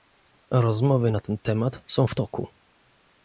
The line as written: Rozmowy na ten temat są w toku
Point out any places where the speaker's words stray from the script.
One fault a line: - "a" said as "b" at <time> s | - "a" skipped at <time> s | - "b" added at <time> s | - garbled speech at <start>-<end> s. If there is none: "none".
none